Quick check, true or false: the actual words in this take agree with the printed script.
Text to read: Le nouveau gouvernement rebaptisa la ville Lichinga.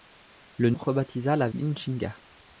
false